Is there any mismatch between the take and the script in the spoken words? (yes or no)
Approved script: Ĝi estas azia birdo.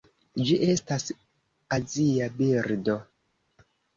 no